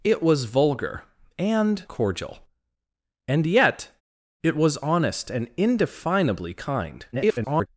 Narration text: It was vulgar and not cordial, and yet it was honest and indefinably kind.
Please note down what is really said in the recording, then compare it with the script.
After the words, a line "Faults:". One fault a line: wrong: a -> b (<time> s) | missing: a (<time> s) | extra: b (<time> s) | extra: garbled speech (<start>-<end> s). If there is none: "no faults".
It was vulgar and cordial, and yet it was honest and indefinably kind. [garbled]
Faults:
missing: not (1.9 s)
extra: garbled speech (7.1-7.7 s)